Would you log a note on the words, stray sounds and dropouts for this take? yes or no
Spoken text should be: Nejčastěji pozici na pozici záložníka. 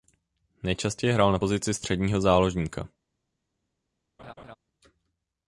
yes